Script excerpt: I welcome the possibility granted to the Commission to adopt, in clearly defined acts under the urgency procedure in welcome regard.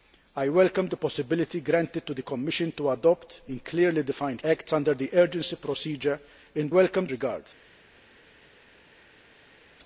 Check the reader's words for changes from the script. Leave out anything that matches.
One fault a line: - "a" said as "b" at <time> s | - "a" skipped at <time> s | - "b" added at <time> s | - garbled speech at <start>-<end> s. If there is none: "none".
none